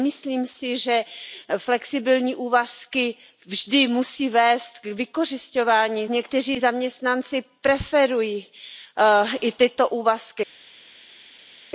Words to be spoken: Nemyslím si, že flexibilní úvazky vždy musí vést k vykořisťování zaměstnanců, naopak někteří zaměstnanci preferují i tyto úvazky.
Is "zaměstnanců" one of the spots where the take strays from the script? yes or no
yes